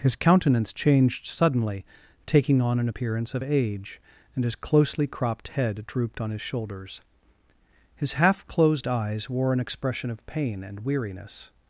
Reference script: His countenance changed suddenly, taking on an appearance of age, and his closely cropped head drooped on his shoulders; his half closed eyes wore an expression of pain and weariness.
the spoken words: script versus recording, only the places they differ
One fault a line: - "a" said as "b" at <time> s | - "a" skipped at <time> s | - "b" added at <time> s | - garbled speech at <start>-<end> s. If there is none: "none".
none